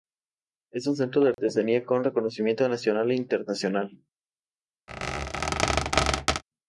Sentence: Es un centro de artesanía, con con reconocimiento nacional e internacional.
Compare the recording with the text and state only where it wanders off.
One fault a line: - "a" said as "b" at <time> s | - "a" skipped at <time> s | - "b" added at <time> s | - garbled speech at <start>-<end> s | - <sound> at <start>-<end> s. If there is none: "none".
- dropout at 1.3-1.4 s
- "con" skipped at 2.0 s
- squeak at 4.9-6.4 s